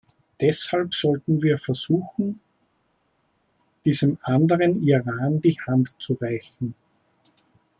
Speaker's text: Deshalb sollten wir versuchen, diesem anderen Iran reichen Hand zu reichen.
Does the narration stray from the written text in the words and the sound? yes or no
yes